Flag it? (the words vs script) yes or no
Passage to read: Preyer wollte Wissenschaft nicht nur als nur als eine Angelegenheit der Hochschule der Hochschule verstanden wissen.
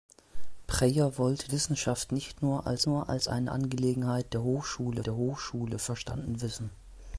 no